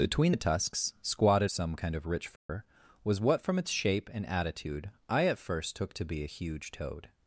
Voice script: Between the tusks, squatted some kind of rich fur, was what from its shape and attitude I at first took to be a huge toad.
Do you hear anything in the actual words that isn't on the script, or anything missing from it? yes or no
no